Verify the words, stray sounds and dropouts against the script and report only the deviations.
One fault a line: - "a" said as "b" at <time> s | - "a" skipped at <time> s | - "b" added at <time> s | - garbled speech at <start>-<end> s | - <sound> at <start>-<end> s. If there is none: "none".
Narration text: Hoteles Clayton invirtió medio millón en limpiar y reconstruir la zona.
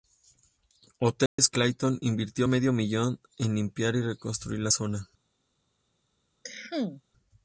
- dropout at 1.3-1.4 s
- cough at 6.4-7.0 s